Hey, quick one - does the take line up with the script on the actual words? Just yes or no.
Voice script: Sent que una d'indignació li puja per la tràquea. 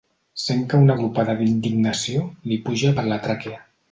no